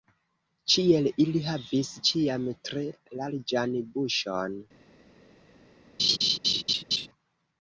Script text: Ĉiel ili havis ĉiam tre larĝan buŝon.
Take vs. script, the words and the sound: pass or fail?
fail